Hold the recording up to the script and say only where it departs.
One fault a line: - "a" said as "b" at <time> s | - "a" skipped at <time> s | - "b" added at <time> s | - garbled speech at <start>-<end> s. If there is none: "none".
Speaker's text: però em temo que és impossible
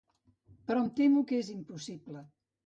none